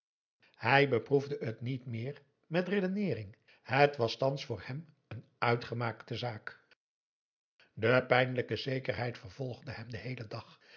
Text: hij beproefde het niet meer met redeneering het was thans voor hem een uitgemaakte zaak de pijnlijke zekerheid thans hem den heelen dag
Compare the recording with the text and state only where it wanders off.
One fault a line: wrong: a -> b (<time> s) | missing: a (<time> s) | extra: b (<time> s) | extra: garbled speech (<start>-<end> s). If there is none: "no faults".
wrong: thans -> vervolgde (9.2 s)